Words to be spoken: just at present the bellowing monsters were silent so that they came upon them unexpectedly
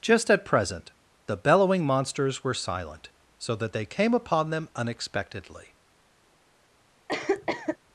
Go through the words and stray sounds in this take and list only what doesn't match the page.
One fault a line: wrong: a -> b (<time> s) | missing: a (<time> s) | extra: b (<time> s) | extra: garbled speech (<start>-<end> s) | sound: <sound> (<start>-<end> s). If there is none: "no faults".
sound: cough (7.1-7.8 s)